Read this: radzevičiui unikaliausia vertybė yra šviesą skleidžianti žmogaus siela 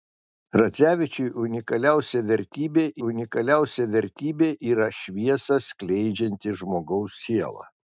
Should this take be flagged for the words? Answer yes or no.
yes